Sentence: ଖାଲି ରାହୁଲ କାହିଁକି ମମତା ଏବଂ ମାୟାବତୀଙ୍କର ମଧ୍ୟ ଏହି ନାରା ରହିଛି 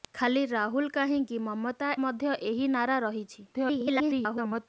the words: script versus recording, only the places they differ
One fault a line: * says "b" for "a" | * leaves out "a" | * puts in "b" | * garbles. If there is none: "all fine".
* leaves out "ଏବଂ ମାୟାବତୀଙ୍କର"
* garbles